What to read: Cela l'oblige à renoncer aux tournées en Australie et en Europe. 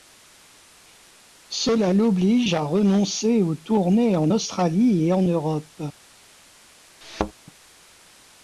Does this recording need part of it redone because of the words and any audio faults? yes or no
yes